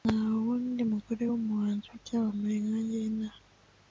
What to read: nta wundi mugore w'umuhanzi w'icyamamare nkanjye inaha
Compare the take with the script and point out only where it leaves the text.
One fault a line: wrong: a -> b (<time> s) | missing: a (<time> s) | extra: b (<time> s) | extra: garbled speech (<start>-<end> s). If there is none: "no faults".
no faults